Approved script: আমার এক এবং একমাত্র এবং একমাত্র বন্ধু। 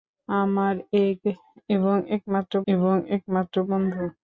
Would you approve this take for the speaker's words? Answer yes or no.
yes